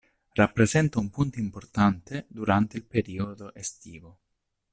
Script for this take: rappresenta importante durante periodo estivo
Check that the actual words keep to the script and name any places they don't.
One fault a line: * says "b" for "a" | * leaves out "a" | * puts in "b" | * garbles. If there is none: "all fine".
* puts in "un punto"
* puts in "il"